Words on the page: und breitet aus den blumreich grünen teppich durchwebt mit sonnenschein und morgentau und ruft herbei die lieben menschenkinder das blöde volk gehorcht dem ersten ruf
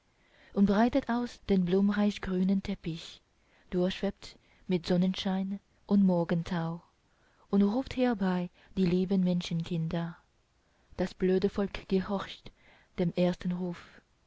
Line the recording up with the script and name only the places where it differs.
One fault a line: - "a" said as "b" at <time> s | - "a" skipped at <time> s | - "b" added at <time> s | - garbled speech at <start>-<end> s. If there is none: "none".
none